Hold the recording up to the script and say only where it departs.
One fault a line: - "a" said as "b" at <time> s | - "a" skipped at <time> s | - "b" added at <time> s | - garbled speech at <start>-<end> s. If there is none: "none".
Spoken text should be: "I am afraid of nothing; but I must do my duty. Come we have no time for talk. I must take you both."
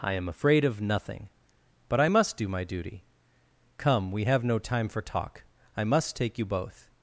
none